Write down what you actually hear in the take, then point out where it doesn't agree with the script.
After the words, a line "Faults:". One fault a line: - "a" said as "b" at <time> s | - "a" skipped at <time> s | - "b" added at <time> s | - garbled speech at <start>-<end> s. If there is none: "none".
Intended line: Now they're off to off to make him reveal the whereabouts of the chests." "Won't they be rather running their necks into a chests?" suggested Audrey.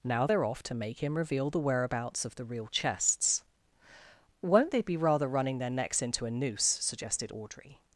Now they're off to make him reveal the whereabouts of the real chests." "Won't they be rather running their necks into a noose?" suggested Audrey.
Faults:
- "off to" skipped at 0.7 s
- "real" added at 2.4 s
- "chests" said as "noose" at 6.3 s